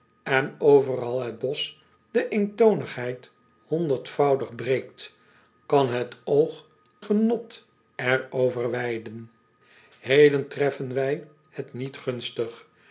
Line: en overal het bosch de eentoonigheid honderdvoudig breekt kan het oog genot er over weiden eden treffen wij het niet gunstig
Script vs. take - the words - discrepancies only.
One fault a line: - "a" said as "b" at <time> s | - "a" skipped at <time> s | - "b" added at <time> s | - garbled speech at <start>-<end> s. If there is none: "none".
none